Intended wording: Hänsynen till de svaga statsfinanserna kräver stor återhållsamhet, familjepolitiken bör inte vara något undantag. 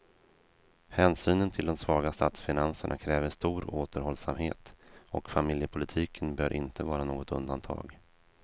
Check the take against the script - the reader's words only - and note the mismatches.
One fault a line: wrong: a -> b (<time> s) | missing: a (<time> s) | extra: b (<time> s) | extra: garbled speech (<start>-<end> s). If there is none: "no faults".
extra: och (5.1 s)